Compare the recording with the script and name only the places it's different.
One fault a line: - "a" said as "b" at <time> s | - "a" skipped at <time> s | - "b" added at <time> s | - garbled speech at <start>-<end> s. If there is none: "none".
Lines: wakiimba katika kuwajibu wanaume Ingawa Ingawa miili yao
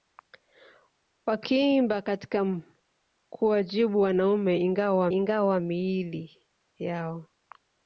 none